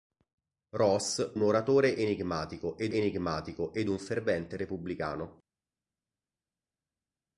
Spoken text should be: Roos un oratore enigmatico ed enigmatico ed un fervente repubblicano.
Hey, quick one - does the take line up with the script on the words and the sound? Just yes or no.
yes